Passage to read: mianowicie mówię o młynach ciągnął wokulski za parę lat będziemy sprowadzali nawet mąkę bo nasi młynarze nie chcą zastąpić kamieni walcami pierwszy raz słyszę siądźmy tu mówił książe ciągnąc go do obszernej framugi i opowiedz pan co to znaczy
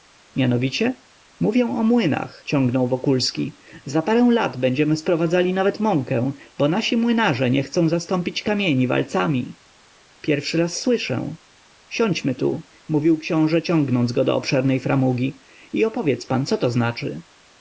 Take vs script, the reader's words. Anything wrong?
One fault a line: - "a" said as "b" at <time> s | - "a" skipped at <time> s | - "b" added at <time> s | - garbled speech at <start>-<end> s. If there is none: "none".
none